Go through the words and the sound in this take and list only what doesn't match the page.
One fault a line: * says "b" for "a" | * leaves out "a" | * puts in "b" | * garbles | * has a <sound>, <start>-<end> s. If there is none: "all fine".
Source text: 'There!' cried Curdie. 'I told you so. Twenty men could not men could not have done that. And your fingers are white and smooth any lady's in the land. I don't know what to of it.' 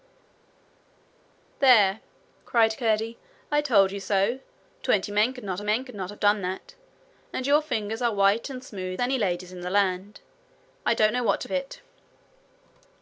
all fine